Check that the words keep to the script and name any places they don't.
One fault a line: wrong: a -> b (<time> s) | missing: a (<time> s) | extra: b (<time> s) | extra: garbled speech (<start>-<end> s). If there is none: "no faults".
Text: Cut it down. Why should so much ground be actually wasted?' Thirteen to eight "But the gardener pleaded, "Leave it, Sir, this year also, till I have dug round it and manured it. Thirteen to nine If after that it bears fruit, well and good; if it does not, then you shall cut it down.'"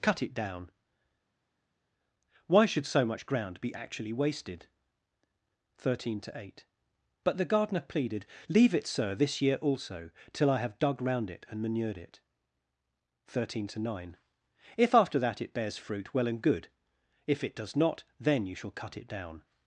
no faults